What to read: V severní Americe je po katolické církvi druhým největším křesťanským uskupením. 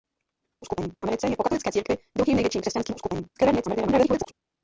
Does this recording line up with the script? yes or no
no